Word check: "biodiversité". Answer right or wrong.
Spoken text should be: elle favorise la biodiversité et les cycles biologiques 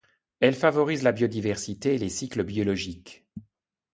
right